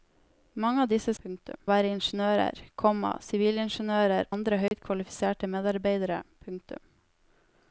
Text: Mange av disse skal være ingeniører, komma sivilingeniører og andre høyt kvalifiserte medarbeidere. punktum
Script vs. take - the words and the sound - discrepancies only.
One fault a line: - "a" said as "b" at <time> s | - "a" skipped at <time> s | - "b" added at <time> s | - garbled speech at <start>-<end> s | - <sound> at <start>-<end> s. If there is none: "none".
- "skal" said as "punktum" at 1.2 s
- "og" skipped at 4.3 s
- dropout at 4.7-4.7 s